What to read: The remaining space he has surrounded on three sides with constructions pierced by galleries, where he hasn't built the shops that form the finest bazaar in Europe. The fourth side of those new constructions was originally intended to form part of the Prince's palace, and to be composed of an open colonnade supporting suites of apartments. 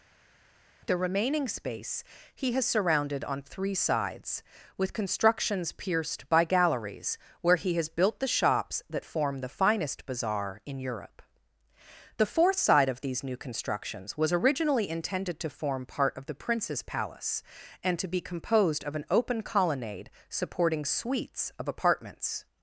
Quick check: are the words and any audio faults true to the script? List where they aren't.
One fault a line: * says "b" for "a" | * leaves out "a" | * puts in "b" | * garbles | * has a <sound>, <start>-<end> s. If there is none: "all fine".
* says "has" for "hasn't"
* says "these" for "those"